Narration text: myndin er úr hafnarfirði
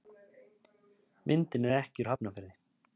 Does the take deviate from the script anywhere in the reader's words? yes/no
yes